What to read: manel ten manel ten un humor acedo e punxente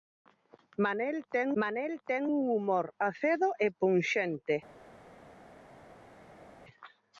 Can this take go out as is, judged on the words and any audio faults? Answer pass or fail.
pass